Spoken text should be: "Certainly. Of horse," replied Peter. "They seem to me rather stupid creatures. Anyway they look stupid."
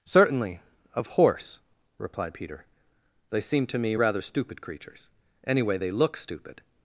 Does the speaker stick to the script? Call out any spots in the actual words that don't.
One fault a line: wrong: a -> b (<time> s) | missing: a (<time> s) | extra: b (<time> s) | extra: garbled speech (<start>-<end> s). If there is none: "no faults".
no faults